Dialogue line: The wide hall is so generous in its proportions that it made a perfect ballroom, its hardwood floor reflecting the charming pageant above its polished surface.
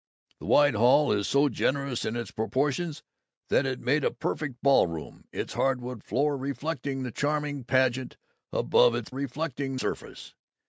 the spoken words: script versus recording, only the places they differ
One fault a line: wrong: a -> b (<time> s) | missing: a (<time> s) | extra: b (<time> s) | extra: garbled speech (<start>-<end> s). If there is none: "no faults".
wrong: polished -> reflecting (9.1 s)